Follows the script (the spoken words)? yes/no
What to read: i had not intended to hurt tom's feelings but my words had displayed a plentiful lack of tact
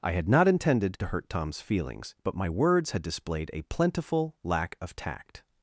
yes